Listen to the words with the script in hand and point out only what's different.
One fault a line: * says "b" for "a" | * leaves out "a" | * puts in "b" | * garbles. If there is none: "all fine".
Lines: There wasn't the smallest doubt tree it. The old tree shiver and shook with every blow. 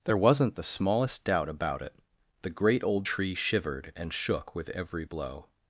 * says "about" for "tree"
* puts in "great"
* says "shivered" for "shiver"